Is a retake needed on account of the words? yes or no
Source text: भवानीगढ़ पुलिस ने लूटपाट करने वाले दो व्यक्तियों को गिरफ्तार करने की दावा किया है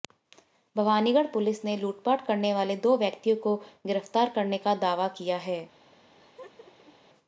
yes